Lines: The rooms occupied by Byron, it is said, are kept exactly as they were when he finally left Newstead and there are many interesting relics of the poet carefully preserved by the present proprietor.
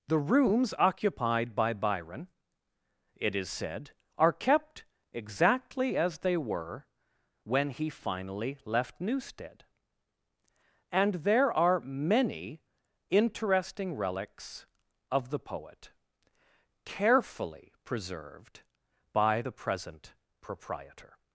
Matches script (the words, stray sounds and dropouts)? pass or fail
pass